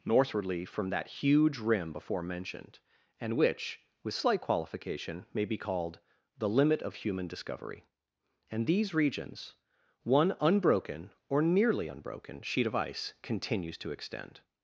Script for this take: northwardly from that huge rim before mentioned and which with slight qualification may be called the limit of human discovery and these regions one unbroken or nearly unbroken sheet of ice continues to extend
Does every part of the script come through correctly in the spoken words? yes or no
yes